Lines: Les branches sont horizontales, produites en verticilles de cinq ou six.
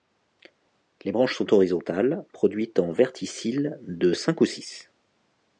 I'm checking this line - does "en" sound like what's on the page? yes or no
yes